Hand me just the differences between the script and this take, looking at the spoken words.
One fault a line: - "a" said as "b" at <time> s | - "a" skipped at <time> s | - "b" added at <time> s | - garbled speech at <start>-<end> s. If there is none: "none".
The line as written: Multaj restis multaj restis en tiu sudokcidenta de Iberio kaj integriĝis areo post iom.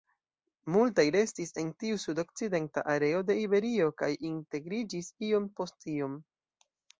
- "multaj restis" skipped at 1.5 s
- "areo" added at 2.9 s
- "areo" said as "iom" at 5.3 s